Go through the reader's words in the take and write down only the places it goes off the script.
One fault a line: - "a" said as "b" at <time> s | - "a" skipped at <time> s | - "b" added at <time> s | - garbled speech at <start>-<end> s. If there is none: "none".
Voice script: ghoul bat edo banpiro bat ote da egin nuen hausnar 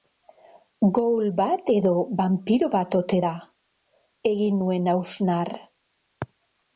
none